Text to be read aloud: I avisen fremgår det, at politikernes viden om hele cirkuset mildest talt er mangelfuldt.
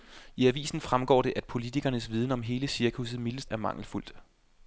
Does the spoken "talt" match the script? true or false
false